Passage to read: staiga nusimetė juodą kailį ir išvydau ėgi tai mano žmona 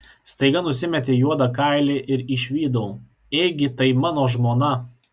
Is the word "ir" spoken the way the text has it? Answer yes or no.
yes